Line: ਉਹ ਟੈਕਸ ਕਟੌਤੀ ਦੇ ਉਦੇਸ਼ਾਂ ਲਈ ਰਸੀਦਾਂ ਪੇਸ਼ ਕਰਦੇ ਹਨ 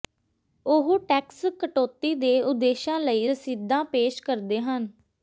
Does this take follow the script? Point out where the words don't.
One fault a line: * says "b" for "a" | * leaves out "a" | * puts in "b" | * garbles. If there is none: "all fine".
all fine